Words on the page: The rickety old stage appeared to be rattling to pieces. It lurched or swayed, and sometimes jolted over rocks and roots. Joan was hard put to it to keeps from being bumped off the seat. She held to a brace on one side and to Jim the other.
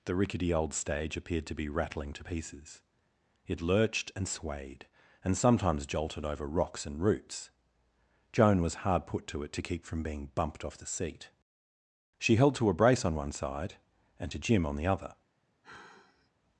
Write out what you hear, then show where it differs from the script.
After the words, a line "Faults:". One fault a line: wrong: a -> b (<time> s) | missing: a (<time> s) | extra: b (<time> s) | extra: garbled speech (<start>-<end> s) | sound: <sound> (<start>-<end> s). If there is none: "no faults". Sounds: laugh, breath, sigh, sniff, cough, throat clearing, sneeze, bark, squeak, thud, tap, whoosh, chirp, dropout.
The rickety old stage appeared to be rattling to pieces. It lurched and swayed, and sometimes jolted over rocks and roots. Joan was hard put to it to keep from being bumped off the seat. She held to a brace on one side and to Jim on the other.
Faults:
wrong: or -> and (4.1 s)
wrong: keeps -> keep (9.6 s)
extra: on (14.6 s)
sound: sigh (15.6-16.3 s)